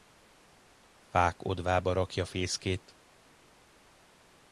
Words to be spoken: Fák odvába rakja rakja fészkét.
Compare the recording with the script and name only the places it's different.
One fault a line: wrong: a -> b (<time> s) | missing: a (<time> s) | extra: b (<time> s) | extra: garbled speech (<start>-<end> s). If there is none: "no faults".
missing: rakja (2.2 s)